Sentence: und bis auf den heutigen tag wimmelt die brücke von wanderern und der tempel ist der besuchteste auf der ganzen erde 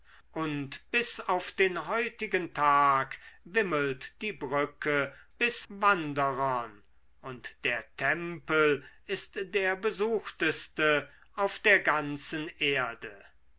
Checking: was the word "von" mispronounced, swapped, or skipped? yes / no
yes